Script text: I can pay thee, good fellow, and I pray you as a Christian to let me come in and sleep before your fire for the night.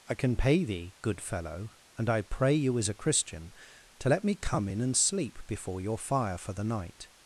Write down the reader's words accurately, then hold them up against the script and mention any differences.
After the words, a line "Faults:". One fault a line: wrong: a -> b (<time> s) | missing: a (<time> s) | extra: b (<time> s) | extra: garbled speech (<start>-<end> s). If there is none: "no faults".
I can pay thee, good fellow, and I pray you as a Christian to let me come in and sleep before your fire for the night.
Faults:
no faults